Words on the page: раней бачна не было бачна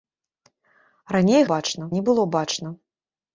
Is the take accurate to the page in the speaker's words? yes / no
yes